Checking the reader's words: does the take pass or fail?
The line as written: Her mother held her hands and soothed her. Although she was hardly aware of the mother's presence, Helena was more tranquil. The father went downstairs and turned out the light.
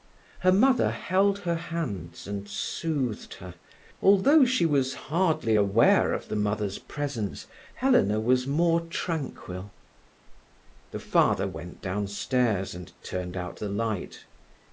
pass